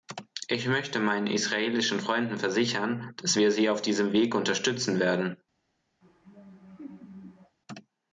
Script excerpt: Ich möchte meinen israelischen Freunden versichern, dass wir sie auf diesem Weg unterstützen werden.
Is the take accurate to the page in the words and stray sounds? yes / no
no